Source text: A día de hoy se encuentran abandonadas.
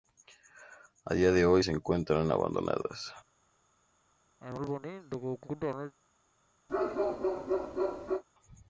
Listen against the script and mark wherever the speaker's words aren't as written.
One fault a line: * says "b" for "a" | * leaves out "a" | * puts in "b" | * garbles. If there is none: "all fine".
all fine